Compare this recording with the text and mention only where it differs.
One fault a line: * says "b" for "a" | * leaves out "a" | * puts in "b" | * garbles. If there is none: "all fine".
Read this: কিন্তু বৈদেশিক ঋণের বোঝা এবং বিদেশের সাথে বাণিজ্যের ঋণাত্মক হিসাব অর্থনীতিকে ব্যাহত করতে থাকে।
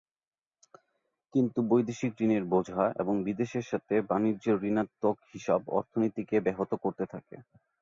all fine